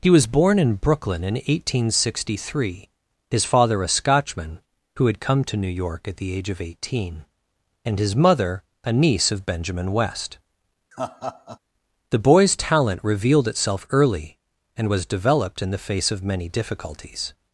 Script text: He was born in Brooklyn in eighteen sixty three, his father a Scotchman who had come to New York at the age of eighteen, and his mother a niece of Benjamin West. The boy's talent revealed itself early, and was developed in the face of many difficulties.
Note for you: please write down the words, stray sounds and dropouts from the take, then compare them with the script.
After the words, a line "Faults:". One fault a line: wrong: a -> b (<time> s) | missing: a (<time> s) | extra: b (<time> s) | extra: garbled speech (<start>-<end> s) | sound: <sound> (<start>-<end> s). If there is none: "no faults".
He was born in Brooklyn in eighteen sixty three, his father a Scotchman who had come to New York at the age of eighteen, and his mother a niece of Benjamin West. The boy's talent revealed itself early, and was developed in the face of many difficulties.
Faults:
sound: laugh (10.9-11.6 s)